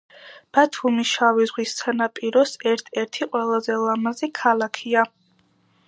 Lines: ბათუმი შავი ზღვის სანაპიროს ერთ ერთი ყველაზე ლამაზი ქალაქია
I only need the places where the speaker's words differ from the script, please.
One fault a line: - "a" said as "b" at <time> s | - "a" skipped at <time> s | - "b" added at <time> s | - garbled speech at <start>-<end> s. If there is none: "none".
none